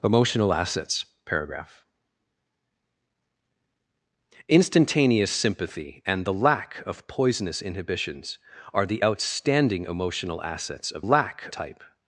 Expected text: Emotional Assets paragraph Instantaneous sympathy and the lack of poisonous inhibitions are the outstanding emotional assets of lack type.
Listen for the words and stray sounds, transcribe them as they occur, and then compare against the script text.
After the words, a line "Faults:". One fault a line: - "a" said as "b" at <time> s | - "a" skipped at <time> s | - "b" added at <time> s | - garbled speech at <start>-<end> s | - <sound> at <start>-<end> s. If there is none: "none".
Emotional Assets paragraph Instantaneous sympathy and the lack of poisonous inhibitions are the outstanding emotional assets of lack type.
Faults:
none